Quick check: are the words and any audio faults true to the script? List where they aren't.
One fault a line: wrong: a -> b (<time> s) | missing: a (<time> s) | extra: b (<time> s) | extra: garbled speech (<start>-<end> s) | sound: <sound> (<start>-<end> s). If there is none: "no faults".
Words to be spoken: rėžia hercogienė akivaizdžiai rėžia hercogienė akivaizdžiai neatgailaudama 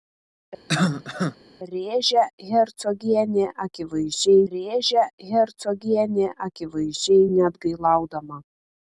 sound: cough (0.7-1.4 s)